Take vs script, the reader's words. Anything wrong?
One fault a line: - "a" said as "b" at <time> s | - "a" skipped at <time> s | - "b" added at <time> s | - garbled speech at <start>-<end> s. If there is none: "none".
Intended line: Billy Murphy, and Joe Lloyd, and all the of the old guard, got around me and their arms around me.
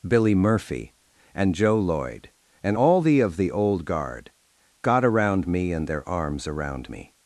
none